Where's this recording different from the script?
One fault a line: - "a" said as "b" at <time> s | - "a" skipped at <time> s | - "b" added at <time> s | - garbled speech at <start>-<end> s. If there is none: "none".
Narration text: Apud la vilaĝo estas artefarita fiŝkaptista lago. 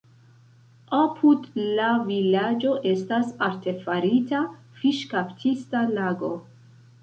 none